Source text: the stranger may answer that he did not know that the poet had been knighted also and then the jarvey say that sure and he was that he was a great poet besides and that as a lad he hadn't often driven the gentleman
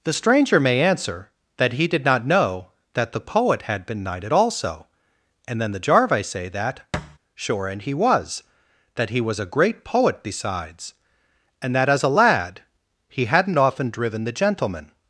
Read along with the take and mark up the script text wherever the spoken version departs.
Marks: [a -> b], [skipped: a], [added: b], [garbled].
the stranger may answer that he did not know that the poet had been knighted also and then the jarvey say that sure and he was that he was a great poet besides and that as a lad he hadn't often driven the gentleman